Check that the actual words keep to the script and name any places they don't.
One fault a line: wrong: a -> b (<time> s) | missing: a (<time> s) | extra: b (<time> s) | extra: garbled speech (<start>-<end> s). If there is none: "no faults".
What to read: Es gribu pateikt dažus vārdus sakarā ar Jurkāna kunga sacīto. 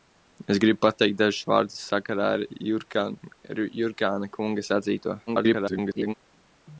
extra: garbled speech (5.3-6.1 s)